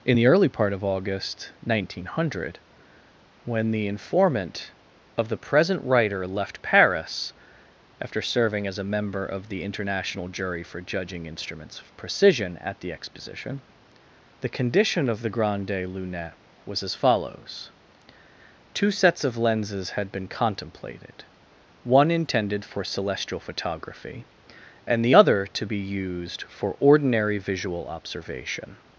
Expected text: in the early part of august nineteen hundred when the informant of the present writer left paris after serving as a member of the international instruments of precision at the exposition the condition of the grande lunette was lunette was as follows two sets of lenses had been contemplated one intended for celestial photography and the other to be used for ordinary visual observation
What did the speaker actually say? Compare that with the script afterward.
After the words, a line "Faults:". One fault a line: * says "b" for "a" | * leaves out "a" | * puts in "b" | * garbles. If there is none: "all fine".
in the early part of august nineteen hundred when the informant of the present writer left paris after serving as a member of the international jury for judging instruments of precision at the exposition the condition of the grande lunette was as follows two sets of lenses had been contemplated one intended for celestial photography and the other to be used for ordinary visual observation
Faults:
* puts in "jury for judging"
* leaves out "lunette was"